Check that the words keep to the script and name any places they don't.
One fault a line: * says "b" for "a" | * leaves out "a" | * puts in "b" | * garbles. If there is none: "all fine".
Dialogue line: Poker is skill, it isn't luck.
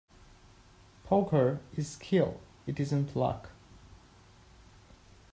all fine